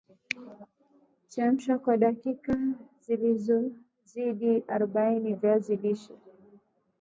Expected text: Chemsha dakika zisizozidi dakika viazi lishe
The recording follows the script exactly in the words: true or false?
false